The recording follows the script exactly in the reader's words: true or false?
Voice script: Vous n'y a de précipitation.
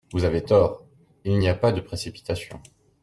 false